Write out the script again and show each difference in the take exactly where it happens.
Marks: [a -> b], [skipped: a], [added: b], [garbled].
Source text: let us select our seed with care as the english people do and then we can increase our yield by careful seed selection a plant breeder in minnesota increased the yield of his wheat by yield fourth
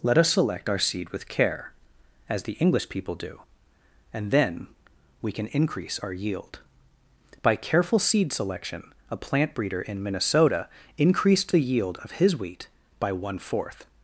let us select our seed with care as the english people do and then we can increase our yield by careful seed selection a plant breeder in minnesota increased the yield of his wheat by [yield -> one] fourth